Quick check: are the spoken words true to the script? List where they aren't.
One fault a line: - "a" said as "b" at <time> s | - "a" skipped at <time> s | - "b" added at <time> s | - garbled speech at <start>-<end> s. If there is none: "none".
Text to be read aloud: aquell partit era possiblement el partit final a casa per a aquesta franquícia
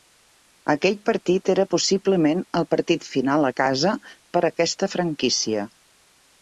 none